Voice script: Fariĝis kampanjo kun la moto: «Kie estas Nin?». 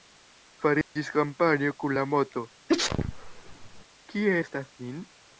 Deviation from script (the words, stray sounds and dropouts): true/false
true